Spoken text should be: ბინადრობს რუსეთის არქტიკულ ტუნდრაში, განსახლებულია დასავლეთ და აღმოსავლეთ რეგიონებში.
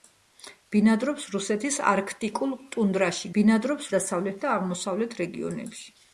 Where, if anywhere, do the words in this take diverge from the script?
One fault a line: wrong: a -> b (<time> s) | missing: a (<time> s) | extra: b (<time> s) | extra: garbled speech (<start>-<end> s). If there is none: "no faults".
wrong: განსახლებულია -> ბინადრობს (3.4 s)